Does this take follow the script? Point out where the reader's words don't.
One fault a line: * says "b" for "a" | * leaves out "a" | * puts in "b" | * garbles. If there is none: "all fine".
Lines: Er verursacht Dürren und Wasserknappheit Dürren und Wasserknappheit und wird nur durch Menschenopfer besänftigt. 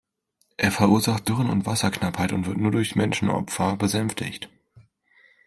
* leaves out "Dürren und Wasserknappheit"